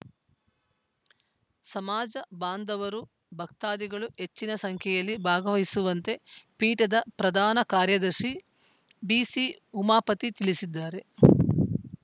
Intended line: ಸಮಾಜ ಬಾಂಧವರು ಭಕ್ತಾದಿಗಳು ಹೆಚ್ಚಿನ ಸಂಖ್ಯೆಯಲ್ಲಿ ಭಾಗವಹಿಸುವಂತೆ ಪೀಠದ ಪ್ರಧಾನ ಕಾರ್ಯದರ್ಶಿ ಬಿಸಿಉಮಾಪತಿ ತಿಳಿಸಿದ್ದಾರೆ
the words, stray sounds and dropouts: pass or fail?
pass